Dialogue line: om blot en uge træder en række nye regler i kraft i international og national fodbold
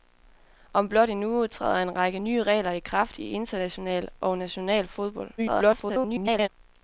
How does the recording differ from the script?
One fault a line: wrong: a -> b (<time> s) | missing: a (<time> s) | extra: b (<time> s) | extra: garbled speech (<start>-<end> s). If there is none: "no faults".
extra: garbled speech (5.4-6.5 s)